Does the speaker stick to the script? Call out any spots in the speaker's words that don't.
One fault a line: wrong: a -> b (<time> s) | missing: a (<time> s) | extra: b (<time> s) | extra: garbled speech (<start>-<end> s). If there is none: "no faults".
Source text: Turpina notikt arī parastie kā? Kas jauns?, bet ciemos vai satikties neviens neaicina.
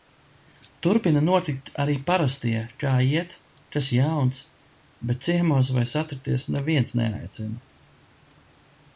extra: iet (3.1 s)